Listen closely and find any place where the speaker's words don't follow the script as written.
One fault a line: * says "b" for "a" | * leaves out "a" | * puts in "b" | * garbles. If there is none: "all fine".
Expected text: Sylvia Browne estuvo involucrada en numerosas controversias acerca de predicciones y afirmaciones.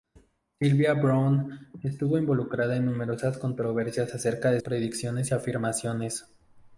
all fine